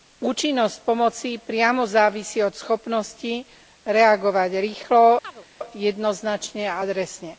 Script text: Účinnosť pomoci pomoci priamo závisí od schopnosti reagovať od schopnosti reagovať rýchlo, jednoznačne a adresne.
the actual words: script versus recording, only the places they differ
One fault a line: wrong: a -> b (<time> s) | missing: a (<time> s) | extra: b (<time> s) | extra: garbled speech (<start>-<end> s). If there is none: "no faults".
missing: pomoci (1.4 s)
missing: od schopnosti reagovať (4.5 s)